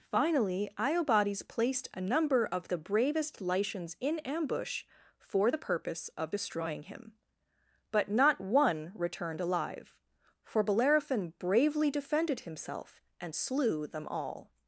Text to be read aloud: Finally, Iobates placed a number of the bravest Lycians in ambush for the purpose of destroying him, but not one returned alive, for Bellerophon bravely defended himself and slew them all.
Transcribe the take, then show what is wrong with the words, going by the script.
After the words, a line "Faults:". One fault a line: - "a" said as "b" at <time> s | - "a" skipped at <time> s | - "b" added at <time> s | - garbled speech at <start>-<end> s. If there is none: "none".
Finally, Iobates placed a number of the bravest Lycians in ambush for the purpose of destroying him, but not one returned alive, for Bellerophon bravely defended himself and slew them all.
Faults:
none